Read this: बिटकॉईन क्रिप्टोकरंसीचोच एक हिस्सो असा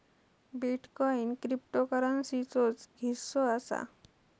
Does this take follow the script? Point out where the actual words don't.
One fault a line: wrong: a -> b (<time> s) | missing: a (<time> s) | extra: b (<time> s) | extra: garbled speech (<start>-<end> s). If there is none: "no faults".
missing: एक (2.9 s)